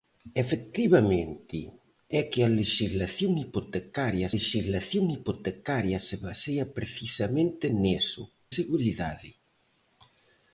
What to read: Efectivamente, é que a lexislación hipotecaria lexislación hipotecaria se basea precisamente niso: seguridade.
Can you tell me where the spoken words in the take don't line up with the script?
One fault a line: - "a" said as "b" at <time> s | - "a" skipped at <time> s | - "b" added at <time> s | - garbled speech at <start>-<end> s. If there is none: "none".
none